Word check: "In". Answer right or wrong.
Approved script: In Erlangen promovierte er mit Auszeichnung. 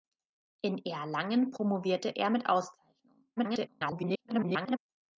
right